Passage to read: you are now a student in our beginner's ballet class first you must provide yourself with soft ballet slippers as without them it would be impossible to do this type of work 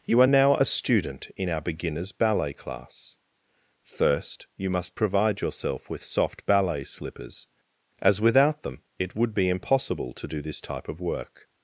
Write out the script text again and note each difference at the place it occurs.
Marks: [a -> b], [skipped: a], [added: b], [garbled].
you are now a student in our beginner's ballet class first you must provide yourself with soft ballet slippers as without them it would be impossible to do this type of work